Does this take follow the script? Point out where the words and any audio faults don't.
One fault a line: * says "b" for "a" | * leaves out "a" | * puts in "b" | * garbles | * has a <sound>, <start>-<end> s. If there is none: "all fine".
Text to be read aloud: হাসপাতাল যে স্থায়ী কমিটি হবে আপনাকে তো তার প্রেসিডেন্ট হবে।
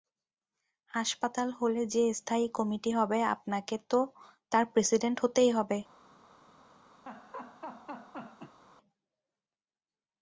* puts in "হলে"
* puts in "হতেই"
* has a laugh, 7.1-8.6 s